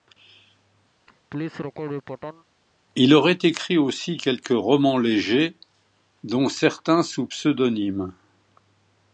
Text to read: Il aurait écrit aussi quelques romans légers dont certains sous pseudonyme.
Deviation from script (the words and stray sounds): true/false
true